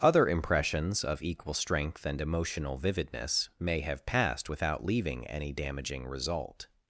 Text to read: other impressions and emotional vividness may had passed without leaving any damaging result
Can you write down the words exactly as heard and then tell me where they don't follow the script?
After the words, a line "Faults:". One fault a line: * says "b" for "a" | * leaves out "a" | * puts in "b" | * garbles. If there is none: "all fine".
other impressions of equal strength and emotional vividness may have passed without leaving any damaging result
Faults:
* puts in "of equal strength"
* says "have" for "had"